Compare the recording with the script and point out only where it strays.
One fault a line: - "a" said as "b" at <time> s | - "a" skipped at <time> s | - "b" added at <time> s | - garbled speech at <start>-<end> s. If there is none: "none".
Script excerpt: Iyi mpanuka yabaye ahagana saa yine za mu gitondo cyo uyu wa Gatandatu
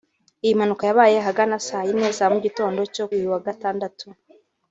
none